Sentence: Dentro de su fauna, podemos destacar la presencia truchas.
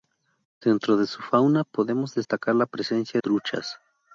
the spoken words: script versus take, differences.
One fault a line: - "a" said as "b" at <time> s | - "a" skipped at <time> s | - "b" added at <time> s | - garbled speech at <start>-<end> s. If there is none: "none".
none